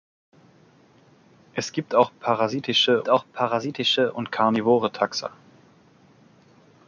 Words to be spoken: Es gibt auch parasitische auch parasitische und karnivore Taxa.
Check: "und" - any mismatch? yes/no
no